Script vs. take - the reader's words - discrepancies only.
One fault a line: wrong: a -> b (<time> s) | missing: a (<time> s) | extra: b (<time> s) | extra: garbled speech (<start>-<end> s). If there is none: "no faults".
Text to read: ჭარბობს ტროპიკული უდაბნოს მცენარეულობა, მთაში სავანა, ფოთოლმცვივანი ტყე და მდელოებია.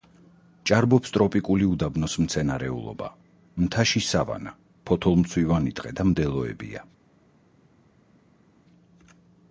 no faults